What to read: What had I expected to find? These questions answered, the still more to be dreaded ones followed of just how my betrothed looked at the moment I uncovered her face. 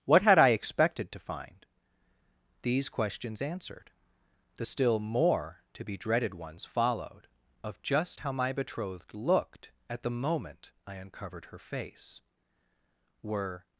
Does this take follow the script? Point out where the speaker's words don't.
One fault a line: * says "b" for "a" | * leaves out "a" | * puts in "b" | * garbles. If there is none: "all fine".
* puts in "Were"